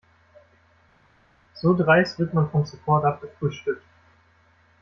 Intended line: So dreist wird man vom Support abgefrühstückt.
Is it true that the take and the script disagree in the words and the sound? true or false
false